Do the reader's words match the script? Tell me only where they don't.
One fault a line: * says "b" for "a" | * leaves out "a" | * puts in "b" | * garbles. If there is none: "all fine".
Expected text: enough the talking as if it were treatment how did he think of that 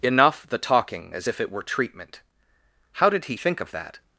all fine